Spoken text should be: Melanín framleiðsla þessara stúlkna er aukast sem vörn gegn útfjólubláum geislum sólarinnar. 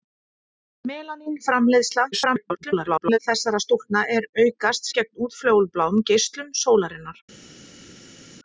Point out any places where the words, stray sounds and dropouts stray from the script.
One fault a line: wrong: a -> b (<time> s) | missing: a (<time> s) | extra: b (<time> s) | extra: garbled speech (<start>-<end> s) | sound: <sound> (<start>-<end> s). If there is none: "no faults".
extra: garbled speech (2.1-3.2 s)
missing: sem vörn (4.9 s)